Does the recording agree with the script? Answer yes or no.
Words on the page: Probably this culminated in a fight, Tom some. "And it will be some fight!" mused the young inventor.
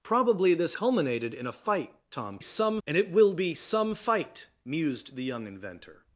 yes